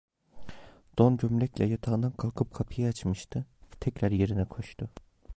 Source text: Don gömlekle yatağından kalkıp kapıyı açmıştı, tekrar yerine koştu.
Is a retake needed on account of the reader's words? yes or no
no